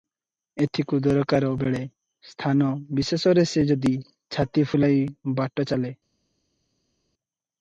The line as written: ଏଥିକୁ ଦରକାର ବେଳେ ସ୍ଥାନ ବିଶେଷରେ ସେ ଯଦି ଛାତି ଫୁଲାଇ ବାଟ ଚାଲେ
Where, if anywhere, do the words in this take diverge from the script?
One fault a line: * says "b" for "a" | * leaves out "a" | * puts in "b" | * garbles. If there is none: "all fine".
all fine